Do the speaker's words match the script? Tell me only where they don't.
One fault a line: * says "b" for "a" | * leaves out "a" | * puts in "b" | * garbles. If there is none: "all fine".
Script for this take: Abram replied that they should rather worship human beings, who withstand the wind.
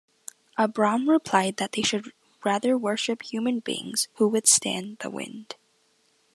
all fine